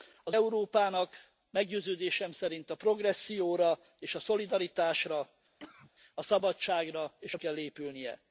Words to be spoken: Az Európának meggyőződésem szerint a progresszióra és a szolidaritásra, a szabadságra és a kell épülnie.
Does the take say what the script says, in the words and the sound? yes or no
no